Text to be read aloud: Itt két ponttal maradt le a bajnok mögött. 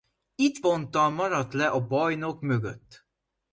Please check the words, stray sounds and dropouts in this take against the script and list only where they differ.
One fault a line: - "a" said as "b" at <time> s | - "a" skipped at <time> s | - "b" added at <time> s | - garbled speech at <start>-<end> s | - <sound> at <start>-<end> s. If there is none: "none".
- "két" skipped at 0.6 s